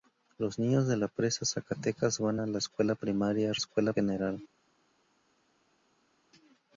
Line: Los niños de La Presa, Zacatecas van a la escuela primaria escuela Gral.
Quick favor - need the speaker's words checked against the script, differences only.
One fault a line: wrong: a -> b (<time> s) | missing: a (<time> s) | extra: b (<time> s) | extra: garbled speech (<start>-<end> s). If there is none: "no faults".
no faults